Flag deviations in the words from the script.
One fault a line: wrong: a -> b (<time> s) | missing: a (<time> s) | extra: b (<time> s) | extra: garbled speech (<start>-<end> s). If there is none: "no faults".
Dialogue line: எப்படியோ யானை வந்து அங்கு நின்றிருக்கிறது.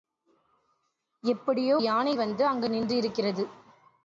no faults